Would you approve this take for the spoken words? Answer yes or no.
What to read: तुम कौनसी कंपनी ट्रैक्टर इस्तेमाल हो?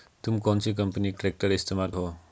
yes